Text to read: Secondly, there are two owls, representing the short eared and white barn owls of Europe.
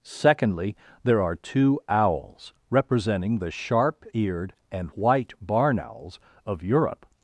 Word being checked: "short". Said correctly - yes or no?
no